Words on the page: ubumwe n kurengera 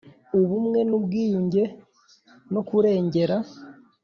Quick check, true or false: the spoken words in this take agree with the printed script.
false